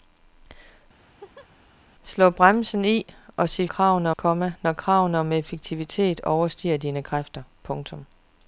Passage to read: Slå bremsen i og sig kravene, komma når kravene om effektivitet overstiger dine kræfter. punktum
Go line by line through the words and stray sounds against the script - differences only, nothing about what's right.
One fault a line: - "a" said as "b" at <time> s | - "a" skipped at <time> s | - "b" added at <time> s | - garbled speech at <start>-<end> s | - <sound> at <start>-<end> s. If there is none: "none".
- laugh at 1.0-1.5 s